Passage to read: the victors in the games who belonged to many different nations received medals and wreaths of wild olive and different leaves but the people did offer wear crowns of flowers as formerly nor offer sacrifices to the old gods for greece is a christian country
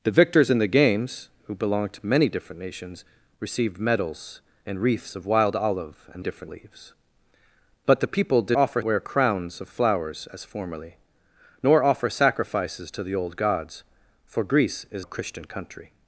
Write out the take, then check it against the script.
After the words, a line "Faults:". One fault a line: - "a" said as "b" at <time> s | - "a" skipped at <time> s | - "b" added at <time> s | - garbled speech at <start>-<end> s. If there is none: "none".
the victors in the games who belonged to many different nations received medals and wreaths of wild olive and different leaves but the people did offer wear crowns of flowers as formerly nor offer sacrifices to the old gods for greece is a christian country
Faults:
none